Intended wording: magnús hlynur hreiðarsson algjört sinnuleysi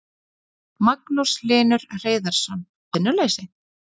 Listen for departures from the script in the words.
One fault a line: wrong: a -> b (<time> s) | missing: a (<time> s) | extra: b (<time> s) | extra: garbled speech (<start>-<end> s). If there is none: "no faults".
missing: algjört (2.7 s)